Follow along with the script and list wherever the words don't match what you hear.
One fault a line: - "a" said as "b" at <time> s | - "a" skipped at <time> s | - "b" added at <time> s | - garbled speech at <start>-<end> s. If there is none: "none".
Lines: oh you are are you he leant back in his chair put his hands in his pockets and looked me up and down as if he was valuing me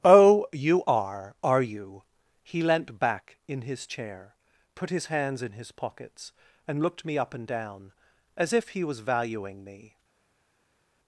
none